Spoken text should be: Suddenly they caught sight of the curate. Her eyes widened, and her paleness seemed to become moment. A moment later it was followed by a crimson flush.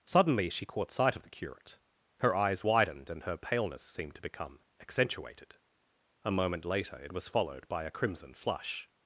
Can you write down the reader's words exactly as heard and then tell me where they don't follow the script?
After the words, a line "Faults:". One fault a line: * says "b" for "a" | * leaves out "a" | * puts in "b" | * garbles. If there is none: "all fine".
Suddenly she caught sight of the curate. Her eyes widened, and her paleness seemed to become accentuated. A moment later it was followed by a crimson flush.
Faults:
* says "she" for "they"
* says "accentuated" for "moment"